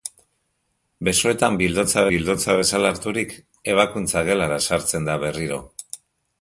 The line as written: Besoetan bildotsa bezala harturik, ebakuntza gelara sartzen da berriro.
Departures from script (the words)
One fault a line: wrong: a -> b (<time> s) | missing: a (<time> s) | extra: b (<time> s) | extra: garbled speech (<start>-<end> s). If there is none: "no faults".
extra: bildotsa (2.1 s)